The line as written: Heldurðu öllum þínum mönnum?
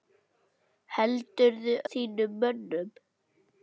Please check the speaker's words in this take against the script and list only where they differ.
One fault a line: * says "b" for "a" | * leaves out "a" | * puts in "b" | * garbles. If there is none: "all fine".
* leaves out "öllum"